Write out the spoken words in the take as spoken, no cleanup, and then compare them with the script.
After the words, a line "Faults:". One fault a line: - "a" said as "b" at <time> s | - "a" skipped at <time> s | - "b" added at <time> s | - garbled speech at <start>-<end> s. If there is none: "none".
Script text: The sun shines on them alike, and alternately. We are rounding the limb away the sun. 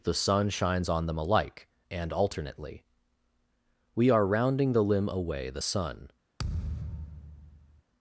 The sun shines on them alike, and alternately. We are rounding the limb away the sun.
Faults:
none